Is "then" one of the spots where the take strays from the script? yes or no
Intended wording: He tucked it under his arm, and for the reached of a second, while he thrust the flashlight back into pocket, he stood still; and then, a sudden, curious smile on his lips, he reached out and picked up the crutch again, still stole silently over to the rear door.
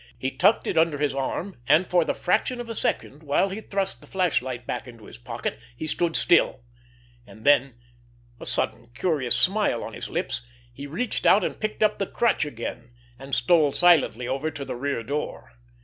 no